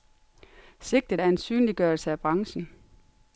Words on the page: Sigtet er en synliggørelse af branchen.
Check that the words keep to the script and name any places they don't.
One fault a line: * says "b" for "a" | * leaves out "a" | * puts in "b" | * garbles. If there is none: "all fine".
all fine